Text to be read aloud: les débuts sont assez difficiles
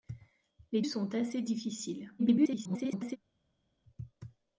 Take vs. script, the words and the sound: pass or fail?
fail